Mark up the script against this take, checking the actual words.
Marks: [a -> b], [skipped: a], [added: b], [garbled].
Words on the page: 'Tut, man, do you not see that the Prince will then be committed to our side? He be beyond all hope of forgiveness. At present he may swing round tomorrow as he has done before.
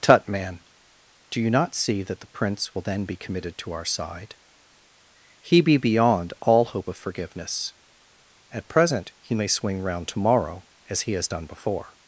'Tut, man, do you not see that the Prince will then be committed to our side? He be beyond all hope of forgiveness. At present he may swing round tomorrow as he has done before.